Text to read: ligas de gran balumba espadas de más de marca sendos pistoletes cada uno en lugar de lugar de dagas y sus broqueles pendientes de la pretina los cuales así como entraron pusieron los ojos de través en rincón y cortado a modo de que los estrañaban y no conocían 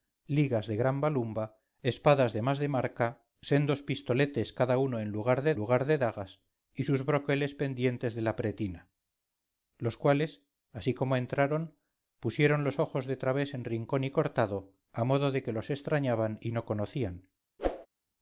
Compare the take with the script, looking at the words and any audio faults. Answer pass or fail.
fail